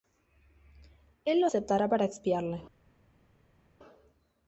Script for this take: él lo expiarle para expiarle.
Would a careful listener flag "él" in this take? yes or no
no